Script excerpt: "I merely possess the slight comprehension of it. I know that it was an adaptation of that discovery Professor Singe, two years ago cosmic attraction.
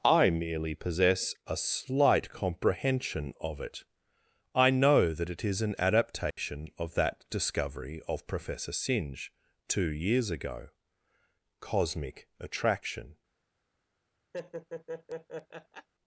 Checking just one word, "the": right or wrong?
wrong